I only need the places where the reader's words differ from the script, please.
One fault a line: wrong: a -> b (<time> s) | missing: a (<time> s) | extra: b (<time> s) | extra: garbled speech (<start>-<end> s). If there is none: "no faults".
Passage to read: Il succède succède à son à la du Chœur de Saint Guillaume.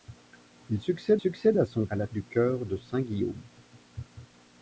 no faults